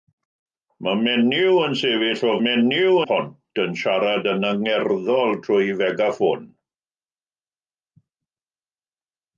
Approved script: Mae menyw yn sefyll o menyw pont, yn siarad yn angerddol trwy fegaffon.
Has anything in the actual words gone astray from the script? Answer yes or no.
no